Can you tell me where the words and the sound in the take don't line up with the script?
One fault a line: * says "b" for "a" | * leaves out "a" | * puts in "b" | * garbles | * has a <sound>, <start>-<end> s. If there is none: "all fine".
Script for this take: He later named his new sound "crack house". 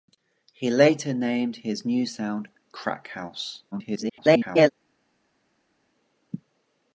* garbles